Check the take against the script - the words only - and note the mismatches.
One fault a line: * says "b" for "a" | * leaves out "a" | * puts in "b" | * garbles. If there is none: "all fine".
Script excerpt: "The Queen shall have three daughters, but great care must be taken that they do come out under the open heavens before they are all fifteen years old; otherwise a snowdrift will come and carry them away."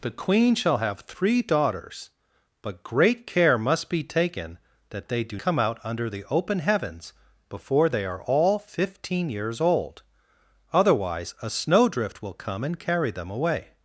all fine